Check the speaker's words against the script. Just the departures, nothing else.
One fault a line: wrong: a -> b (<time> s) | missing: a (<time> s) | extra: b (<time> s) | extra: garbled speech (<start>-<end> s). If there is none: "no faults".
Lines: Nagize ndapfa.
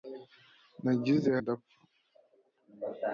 no faults